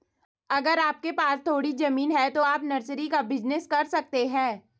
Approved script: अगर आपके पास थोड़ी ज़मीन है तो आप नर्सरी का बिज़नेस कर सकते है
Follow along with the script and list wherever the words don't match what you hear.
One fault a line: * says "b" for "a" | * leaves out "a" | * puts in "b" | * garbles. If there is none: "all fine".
all fine